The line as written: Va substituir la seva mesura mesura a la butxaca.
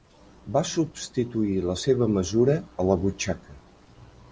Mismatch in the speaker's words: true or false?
true